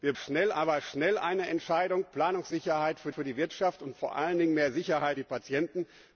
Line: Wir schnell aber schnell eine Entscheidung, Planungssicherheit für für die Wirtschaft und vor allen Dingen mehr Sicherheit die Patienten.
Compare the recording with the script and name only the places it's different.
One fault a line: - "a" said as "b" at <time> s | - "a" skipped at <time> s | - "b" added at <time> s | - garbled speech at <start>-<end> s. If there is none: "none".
none